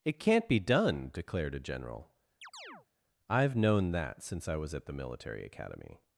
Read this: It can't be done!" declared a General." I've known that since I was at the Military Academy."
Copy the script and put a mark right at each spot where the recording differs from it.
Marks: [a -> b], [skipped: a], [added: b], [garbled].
It can't be done!" declared a General." I've known that since I was at the Military Academy."